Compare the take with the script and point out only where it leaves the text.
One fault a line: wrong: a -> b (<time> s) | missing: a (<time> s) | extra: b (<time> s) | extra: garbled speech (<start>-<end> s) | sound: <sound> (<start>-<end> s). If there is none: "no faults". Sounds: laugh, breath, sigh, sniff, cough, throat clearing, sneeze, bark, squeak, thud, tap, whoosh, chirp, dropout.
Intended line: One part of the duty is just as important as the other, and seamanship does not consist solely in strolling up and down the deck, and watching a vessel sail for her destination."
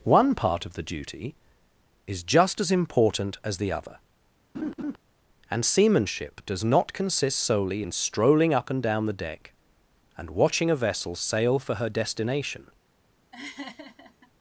sound: laugh (4.5-5.0 s)
sound: laugh (13.3-14.3 s)